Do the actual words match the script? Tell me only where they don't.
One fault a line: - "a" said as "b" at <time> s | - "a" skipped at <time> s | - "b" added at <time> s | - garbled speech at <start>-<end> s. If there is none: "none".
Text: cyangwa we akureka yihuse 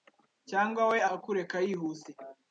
none